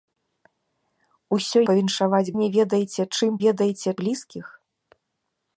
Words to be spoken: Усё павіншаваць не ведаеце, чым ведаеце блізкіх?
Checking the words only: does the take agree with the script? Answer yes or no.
yes